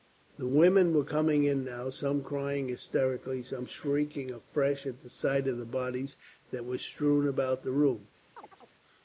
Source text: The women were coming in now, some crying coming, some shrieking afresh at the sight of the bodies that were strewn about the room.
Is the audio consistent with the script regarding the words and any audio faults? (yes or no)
no